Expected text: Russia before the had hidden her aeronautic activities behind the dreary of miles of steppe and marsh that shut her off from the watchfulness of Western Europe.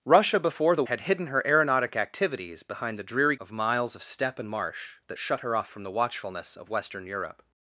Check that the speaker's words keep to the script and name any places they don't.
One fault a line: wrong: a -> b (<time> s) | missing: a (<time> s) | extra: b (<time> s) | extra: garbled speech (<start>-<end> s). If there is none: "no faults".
no faults